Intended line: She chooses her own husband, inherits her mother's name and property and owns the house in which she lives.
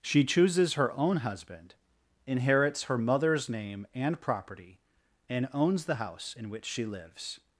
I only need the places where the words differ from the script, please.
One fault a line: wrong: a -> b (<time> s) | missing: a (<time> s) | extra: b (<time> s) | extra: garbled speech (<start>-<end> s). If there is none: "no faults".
no faults